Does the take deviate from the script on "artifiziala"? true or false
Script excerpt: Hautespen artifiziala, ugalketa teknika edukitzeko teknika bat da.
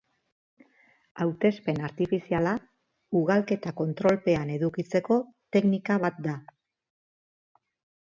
false